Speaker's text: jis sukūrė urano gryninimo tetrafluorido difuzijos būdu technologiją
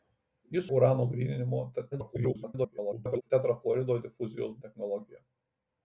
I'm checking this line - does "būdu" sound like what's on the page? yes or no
no